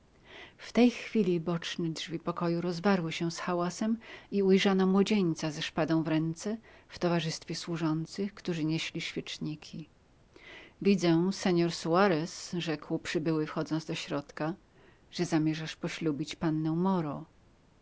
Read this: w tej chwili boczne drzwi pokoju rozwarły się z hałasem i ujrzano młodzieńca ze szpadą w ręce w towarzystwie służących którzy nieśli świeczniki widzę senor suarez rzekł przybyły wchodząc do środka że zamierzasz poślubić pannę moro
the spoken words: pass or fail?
pass